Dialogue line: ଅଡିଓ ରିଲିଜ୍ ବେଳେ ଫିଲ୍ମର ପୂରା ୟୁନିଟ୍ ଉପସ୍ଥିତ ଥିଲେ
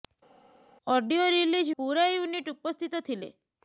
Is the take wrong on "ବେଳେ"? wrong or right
wrong